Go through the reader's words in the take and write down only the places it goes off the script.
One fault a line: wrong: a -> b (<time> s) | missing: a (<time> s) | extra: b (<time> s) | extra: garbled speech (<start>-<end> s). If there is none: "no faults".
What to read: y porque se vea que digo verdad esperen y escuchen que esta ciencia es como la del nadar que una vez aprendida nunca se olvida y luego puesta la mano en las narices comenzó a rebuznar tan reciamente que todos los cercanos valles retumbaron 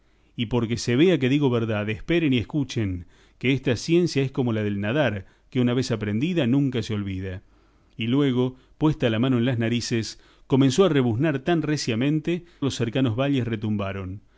missing: que todos (12.4 s)